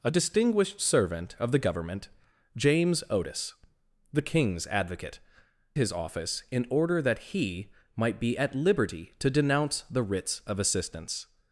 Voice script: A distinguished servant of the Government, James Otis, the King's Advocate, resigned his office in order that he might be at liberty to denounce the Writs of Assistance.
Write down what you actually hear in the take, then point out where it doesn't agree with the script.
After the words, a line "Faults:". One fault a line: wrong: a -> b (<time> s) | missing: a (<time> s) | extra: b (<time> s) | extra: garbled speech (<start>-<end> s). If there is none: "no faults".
A distinguished servant of the Government, James Otis, the King's Advocate, his office in order that he might be at liberty to denounce the Writs of Assistance.
Faults:
missing: resigned (5.2 s)